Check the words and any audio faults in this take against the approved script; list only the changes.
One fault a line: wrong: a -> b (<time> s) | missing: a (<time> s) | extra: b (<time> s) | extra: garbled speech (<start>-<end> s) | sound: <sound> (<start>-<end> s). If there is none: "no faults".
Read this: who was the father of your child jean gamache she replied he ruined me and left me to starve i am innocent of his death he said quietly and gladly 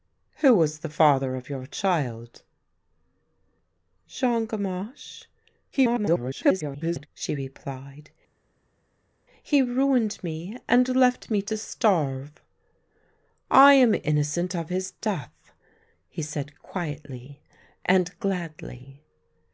extra: garbled speech (5.7-7.1 s)